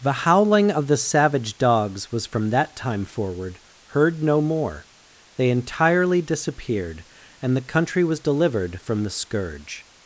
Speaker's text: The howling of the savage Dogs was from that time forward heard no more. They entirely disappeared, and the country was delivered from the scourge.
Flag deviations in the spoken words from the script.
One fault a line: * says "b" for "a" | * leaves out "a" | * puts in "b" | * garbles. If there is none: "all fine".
all fine